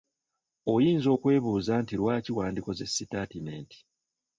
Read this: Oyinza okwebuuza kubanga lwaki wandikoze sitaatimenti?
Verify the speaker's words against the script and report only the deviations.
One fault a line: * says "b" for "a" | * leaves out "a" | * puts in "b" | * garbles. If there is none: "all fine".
* says "nti" for "kubanga"